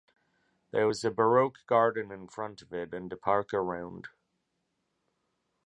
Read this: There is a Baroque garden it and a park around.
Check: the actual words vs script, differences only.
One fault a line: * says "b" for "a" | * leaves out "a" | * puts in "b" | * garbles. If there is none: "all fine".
* says "was" for "is"
* puts in "in front of"